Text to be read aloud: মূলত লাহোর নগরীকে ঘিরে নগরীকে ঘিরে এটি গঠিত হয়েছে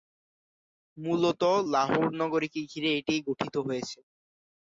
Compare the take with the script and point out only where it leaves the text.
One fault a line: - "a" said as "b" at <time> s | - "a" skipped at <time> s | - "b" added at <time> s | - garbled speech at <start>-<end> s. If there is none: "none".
- "নগরীকে ঘিরে" skipped at 2.9 s